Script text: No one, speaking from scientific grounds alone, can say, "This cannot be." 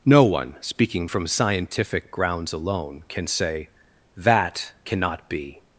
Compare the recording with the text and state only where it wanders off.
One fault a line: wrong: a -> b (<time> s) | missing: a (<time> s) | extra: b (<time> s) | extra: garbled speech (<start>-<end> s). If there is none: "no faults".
wrong: This -> That (4.1 s)